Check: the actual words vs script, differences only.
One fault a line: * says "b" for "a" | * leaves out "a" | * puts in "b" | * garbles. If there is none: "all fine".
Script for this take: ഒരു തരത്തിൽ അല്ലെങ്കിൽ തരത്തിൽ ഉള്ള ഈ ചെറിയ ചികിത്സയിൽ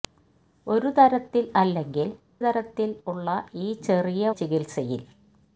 all fine